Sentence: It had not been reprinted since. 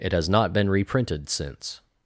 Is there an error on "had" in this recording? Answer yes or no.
yes